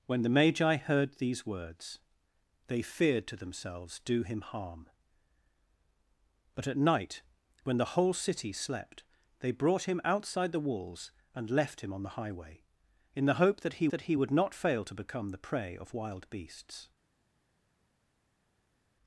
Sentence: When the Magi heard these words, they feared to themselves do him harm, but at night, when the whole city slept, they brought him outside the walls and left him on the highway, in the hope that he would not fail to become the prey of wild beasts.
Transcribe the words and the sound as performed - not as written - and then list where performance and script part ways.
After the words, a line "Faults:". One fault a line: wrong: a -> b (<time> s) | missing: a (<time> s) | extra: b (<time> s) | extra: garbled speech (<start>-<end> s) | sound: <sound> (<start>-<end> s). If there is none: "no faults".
When the Magi heard these words, they feared to themselves do him harm, but at night, when the whole city slept, they brought him outside the walls and left him on the highway, in the hope that he that he would not fail to become the prey of wild beasts.
Faults:
extra: that he (13.9 s)